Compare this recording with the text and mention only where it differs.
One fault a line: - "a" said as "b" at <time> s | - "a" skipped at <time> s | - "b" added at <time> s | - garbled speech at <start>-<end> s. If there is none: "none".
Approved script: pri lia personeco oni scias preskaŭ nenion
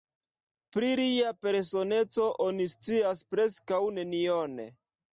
none